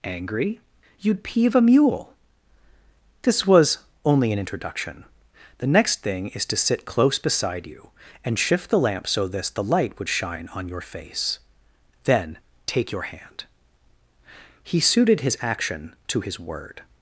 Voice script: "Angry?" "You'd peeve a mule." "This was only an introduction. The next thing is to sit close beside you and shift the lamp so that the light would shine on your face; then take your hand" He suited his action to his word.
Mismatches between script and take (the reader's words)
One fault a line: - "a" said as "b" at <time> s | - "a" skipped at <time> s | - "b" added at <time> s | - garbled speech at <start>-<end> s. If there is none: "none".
- "that" said as "this" at 9.3 s